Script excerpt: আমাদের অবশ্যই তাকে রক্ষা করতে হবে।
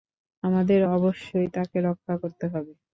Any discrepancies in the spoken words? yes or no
no